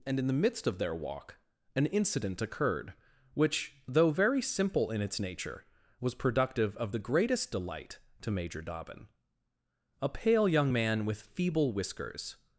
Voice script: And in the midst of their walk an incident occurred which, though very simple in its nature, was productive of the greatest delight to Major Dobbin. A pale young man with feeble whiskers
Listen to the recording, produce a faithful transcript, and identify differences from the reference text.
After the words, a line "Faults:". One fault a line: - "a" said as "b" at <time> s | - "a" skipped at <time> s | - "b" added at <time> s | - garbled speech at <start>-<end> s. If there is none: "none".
And in the midst of their walk an incident occurred which, though very simple in its nature, was productive of the greatest delight to Major Dobbin. A pale young man with feeble whiskers
Faults:
none